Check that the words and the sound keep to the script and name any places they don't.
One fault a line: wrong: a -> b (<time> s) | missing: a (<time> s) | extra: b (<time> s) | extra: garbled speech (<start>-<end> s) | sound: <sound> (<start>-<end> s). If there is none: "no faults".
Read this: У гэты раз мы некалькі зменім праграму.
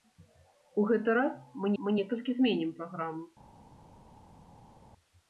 extra: мы (1.8 s)